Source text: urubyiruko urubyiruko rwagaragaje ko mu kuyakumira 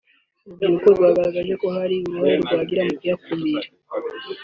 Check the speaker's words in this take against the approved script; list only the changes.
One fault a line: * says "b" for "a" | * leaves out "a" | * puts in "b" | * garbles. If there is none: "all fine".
* leaves out "urubyiruko"
* puts in "hari uruhare rwagira"